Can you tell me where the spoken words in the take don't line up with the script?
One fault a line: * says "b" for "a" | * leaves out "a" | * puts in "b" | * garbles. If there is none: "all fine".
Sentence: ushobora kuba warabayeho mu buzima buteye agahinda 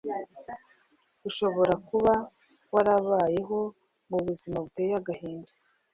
all fine